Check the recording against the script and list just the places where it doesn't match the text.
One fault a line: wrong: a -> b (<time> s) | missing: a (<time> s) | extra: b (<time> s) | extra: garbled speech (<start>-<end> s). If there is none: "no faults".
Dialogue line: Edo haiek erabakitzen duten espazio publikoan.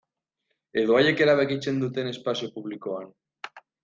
no faults